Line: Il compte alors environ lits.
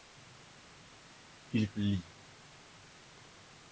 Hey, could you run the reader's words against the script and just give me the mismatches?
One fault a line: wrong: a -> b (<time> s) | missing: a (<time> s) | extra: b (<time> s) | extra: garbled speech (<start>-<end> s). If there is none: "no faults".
missing: compte alors environ (1.7 s)